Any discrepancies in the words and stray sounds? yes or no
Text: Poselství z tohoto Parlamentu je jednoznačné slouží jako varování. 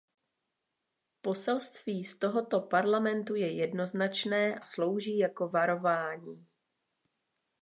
no